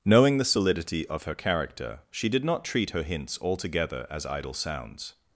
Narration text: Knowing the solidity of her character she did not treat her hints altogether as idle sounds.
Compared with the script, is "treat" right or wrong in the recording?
right